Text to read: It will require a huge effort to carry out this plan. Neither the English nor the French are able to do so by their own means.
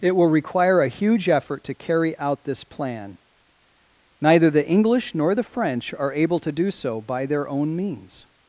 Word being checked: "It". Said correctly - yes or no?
yes